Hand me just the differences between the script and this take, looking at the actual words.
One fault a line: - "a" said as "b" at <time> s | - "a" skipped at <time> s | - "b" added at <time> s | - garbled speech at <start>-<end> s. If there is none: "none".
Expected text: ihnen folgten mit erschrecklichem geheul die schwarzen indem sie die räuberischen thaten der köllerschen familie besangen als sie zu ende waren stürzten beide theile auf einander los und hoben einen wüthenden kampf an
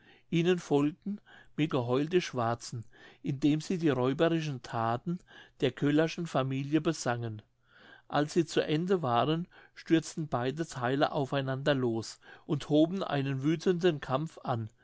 - "erschrecklichem" skipped at 1.7 s